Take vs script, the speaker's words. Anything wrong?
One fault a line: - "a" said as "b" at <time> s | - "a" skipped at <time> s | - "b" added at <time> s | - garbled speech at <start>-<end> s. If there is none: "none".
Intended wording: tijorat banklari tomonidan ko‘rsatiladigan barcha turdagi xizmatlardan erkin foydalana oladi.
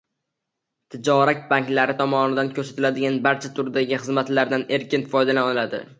none